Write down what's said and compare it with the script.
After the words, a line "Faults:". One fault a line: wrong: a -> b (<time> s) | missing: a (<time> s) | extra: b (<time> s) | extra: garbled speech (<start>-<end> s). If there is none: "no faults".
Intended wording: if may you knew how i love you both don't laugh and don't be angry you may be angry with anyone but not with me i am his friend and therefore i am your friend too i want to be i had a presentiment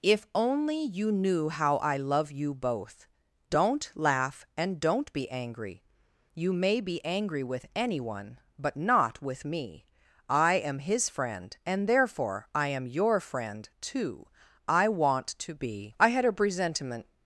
if only you knew how i love you both don't laugh and don't be angry you may be angry with anyone but not with me i am his friend and therefore i am your friend too i want to be i had a presentiment
Faults:
wrong: may -> only (0.3 s)